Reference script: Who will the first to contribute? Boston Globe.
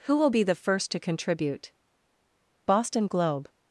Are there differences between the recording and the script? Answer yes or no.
yes